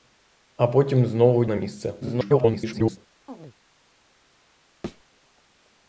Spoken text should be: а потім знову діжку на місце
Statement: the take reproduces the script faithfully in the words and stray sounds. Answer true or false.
false